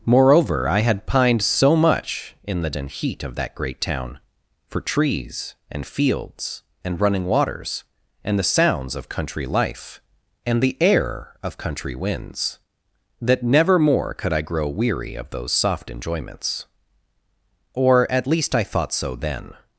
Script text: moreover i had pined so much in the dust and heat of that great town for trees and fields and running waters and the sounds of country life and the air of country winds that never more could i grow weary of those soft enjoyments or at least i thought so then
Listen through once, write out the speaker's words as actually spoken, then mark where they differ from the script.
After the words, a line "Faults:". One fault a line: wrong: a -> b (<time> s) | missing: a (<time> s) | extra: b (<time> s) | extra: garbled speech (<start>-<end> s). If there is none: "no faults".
moreover i had pined so much in the and heat of that great town for trees and fields and running waters and the sounds of country life and the air of country winds that never more could i grow weary of those soft enjoyments or at least i thought so then
Faults:
missing: dust (2.7 s)